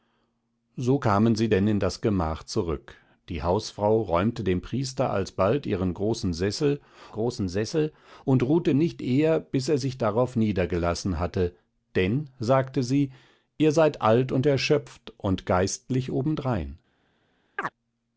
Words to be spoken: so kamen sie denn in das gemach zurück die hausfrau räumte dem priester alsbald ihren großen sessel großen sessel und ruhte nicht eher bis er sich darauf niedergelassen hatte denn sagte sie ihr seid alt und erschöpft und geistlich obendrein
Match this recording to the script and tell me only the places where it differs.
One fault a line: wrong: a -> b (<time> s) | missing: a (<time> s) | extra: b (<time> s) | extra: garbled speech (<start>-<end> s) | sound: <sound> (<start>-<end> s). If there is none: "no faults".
sound: chirp (17.6-17.7 s)